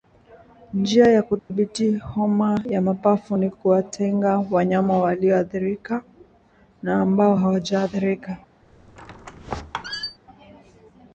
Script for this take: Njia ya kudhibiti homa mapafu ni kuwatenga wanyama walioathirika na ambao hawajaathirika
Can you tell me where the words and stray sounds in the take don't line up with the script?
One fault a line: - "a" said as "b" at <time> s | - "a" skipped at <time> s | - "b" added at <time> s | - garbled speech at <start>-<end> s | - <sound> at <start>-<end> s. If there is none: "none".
- dropout at 1.4-1.5 s
- "ya" added at 2.6 s
- squeak at 8.6-10.2 s